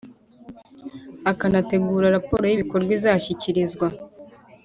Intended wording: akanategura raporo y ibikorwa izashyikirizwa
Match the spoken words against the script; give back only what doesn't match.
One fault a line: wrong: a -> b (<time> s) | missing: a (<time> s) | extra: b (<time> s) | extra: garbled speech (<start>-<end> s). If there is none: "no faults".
no faults